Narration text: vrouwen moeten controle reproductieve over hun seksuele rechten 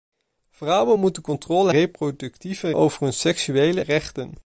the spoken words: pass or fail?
pass